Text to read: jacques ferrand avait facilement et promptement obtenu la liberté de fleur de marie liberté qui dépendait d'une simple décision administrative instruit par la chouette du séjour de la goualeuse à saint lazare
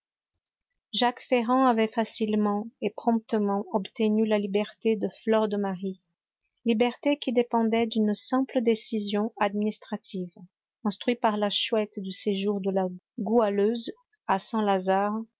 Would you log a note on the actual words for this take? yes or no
no